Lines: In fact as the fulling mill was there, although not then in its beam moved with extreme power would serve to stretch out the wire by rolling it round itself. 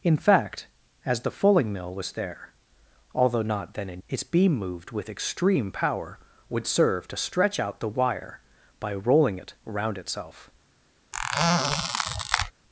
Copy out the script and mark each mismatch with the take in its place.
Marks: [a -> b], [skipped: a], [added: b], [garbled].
In fact as the fulling mill was there, although not then in its beam moved with extreme power would serve to stretch out the wire by rolling it round itself.